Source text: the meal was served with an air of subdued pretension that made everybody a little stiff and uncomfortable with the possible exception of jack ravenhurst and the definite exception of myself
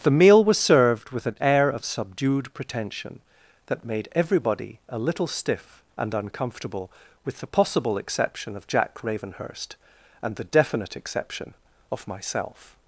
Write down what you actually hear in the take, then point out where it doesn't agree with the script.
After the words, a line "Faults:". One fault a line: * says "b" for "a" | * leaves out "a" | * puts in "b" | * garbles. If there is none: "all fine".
the meal was served with an air of subdued pretension that made everybody a little stiff and uncomfortable with the possible exception of jack ravenhurst and the definite exception of myself
Faults:
all fine